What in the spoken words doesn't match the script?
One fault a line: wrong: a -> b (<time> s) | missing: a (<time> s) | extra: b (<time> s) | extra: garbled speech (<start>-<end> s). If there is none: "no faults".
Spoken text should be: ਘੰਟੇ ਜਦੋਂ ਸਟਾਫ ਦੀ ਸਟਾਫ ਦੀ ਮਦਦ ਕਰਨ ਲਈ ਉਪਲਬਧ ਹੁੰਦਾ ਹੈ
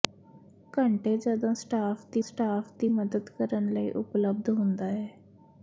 no faults